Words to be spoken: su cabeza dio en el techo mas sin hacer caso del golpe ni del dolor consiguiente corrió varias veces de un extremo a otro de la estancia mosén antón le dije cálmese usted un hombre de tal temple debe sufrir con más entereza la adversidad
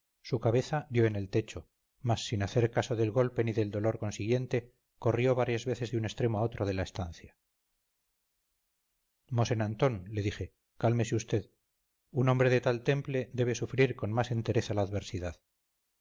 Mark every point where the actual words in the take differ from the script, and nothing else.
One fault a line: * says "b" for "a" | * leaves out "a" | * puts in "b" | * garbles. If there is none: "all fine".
all fine